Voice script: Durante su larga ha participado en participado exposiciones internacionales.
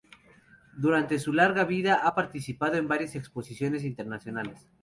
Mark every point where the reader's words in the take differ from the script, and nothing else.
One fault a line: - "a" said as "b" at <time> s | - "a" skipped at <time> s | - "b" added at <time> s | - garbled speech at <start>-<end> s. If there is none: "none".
- "vida" added at 1.6 s
- "participado" said as "varias" at 2.9 s